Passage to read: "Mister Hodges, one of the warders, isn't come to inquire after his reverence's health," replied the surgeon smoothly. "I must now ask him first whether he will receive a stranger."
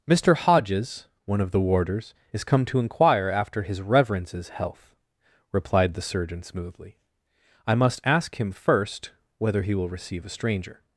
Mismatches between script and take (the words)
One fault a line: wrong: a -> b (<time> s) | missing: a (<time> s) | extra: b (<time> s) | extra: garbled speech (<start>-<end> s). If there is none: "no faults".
wrong: isn't -> is (2.3 s)
missing: now (8.0 s)